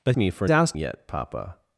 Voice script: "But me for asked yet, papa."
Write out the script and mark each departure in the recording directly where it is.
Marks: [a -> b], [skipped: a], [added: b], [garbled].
"But me for asked yet, papa."